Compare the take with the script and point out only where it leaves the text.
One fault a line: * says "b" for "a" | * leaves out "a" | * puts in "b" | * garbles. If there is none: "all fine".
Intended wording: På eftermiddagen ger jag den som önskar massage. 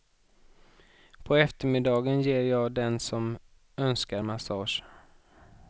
all fine